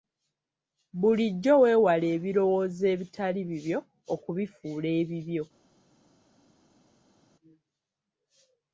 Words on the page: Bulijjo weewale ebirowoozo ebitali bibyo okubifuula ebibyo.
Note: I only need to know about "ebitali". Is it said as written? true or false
true